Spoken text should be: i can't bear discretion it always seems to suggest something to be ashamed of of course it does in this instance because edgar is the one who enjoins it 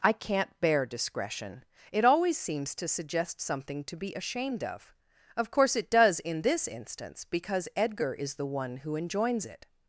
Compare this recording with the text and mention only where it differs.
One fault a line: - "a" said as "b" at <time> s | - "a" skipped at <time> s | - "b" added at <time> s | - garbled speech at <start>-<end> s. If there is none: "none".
none